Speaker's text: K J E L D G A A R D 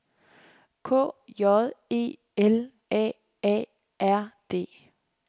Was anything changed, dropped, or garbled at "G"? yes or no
yes